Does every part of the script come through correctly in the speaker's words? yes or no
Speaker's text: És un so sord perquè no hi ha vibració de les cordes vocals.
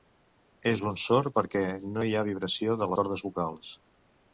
no